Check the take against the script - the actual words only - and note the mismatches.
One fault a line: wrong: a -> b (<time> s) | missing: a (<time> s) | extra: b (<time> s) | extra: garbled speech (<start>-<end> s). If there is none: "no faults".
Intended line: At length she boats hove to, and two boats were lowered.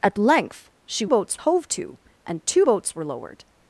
no faults